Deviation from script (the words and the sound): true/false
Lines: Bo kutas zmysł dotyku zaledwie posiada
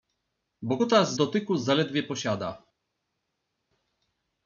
true